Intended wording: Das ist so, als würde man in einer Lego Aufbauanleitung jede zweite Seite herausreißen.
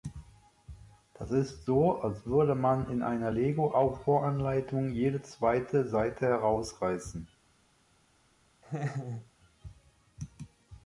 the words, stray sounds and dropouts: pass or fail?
fail